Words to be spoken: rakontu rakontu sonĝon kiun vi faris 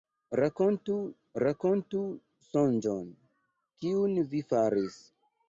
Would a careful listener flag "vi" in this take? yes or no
no